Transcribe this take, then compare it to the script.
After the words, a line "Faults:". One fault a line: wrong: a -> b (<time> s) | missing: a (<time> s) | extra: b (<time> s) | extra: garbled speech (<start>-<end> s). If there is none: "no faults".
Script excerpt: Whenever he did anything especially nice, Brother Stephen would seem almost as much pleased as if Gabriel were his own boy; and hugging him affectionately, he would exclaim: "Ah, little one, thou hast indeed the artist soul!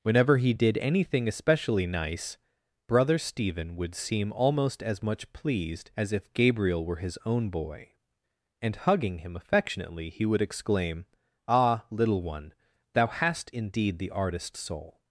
Whenever he did anything especially nice, Brother Stephen would seem almost as much pleased as if Gabriel were his own boy; and hugging him affectionately, he would exclaim: "Ah, little one, thou hast indeed the artist soul!
Faults:
no faults